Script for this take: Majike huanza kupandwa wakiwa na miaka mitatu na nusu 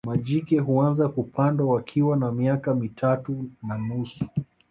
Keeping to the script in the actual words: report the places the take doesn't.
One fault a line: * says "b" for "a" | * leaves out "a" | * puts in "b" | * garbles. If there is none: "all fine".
all fine